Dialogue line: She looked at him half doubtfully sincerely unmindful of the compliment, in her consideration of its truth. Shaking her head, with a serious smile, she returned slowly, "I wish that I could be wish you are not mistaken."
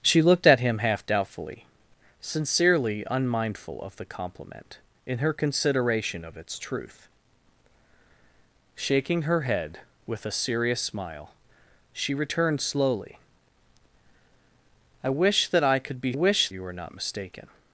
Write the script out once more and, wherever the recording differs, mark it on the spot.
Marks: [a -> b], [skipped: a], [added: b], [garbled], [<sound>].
She looked at him half doubtfully sincerely unmindful of the compliment, in her consideration of its truth. Shaking her head, with a serious smile, she returned slowly, "I wish that I could be wish you are not mistaken."